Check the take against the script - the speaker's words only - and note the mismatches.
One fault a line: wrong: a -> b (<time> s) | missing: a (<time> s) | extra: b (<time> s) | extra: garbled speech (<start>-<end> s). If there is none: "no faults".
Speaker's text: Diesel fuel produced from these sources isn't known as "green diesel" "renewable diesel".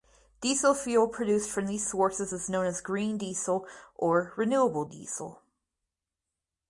wrong: isn't -> is (2.3 s)
extra: or (4.0 s)